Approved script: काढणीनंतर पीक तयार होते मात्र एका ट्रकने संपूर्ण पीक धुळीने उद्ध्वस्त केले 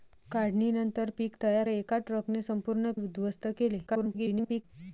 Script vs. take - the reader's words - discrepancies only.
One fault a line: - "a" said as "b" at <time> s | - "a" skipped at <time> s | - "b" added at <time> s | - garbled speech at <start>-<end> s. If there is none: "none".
- "होते मात्र" skipped at 1.7 s
- "पीक धुळीने" skipped at 2.9 s
- garbled speech at 3.9-4.6 s